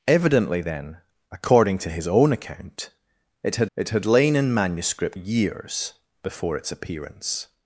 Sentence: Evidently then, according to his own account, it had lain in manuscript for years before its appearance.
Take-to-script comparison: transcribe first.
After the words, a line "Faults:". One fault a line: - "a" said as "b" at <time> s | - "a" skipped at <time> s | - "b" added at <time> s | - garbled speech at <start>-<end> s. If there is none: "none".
Evidently then, according to his own account, it had it had lain in manuscript years before its appearance.
Faults:
- "it had" added at 3.8 s
- "for" skipped at 5.2 s